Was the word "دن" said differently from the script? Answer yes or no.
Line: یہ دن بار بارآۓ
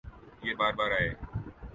yes